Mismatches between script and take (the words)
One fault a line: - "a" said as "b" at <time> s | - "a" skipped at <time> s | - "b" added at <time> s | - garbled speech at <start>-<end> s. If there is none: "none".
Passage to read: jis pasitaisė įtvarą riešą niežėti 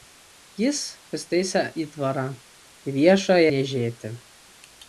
none